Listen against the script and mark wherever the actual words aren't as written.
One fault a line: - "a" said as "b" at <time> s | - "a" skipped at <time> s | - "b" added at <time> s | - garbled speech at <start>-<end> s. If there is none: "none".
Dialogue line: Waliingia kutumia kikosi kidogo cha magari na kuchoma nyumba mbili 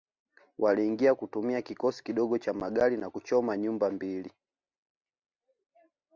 none